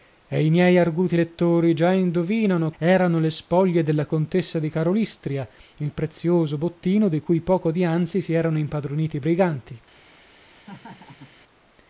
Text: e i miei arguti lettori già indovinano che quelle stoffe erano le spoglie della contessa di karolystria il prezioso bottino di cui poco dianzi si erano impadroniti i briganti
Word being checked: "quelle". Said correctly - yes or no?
no